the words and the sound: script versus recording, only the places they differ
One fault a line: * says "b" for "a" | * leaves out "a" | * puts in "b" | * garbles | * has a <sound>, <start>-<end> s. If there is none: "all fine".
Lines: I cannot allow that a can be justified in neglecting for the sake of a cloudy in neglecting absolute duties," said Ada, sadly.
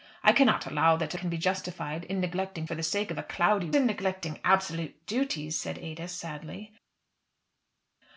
all fine